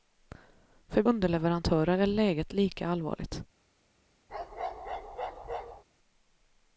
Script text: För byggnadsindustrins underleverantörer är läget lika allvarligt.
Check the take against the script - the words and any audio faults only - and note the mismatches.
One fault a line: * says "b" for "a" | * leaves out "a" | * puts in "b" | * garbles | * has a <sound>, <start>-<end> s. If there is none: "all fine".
* leaves out "byggnadsindustrins"
* has a bark, 4.3-5.8 s